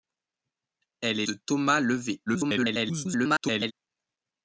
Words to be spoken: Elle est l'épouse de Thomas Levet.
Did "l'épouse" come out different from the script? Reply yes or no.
yes